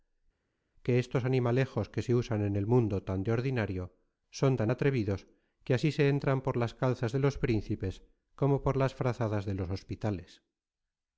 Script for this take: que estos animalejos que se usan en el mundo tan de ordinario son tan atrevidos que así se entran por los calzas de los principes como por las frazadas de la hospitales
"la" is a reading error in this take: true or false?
true